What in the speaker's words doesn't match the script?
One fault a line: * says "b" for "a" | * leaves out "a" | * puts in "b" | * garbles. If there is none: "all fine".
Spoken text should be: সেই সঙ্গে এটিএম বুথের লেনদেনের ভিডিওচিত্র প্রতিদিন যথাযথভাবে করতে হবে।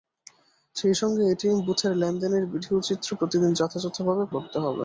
all fine